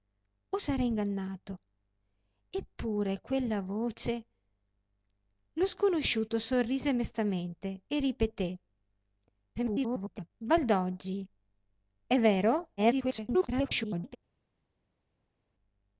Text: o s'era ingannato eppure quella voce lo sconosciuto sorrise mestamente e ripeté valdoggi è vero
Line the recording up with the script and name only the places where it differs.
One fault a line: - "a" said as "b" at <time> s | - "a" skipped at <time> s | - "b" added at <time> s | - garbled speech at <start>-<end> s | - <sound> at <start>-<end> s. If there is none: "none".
- garbled speech at 9.6-10.3 s
- garbled speech at 12.8-14.2 s